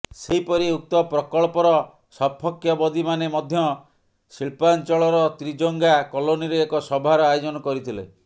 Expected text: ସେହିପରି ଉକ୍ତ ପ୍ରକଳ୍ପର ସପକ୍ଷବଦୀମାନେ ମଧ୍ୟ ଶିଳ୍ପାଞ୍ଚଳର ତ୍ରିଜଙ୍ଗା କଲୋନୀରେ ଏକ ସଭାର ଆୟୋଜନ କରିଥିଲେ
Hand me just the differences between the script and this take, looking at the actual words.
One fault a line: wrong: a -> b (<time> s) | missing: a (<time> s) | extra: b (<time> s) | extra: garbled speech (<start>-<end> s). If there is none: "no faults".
no faults